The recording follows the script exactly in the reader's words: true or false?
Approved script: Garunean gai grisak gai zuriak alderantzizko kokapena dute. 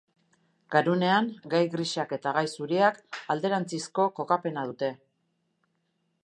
false